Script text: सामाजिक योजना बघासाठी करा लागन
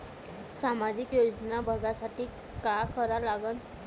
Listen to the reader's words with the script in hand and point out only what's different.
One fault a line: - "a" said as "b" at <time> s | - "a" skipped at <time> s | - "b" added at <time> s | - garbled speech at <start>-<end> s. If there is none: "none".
- "का" added at 2.6 s